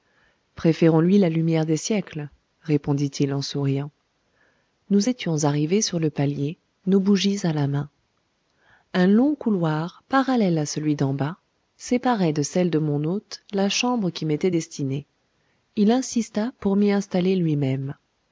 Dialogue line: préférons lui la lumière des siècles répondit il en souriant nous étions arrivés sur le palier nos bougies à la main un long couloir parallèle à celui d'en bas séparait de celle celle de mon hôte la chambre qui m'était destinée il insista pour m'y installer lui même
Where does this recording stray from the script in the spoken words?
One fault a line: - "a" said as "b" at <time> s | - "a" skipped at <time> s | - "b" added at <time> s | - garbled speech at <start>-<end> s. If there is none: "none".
- "celle" skipped at 12.7 s